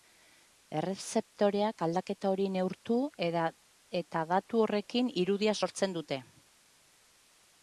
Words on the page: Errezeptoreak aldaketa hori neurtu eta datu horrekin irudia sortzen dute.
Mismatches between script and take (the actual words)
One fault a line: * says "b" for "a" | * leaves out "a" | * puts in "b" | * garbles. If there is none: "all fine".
all fine